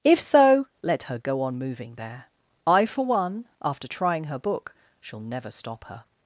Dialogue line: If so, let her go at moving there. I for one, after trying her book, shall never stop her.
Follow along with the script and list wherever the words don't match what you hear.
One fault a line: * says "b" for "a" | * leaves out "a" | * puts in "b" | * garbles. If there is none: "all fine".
* says "on" for "at"